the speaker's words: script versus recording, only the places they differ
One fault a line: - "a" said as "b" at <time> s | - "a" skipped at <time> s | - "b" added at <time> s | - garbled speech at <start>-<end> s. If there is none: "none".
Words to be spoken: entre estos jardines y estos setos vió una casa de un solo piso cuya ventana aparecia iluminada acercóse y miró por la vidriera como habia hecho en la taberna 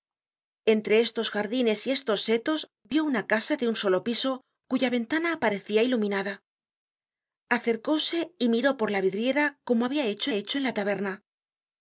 - "hecho" added at 10.3 s